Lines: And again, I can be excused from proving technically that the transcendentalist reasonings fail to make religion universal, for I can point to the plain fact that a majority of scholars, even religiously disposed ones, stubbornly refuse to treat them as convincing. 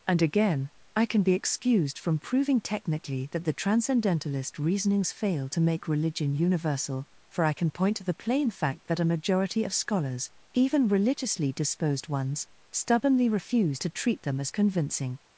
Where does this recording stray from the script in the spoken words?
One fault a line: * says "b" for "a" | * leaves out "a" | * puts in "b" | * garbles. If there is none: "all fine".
all fine